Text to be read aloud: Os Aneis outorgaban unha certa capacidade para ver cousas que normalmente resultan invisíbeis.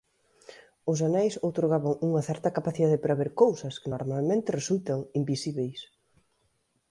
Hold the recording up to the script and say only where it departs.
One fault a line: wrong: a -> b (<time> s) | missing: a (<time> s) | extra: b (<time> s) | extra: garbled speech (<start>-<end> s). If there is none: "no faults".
no faults